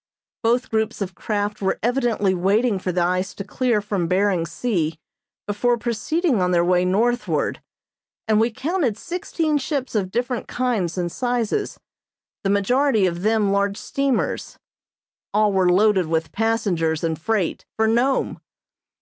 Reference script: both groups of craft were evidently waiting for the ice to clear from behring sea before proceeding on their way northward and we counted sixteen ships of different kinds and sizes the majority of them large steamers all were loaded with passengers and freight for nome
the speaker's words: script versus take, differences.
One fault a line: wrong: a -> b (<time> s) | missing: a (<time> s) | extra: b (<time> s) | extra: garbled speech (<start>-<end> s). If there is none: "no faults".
no faults